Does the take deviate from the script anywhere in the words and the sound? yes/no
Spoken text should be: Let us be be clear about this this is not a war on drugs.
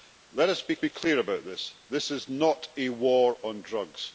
no